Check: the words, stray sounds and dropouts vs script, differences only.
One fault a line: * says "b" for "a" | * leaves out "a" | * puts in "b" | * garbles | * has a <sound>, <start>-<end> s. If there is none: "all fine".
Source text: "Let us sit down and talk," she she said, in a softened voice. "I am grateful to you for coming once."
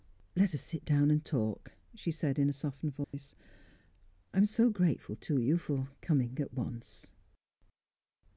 * leaves out "she"
* has a dropout, 3.0-3.1 s
* puts in "so"
* puts in "at"